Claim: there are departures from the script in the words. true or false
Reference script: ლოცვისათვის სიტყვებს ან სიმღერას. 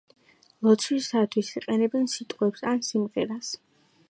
true